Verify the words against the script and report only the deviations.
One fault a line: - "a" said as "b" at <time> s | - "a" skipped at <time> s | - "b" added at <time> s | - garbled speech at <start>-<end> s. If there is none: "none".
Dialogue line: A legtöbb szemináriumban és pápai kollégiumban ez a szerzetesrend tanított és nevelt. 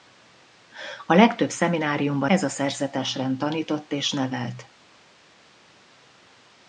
- "és pápai kollégiumban" skipped at 2.3 s